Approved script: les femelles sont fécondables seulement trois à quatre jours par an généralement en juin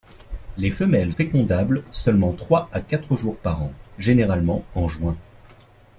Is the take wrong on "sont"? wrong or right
wrong